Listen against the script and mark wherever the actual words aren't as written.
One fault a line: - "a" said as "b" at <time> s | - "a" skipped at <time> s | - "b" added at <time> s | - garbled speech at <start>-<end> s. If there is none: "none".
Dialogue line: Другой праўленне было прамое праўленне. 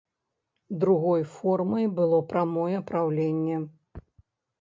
- "праўленне" said as "формай" at 1.3 s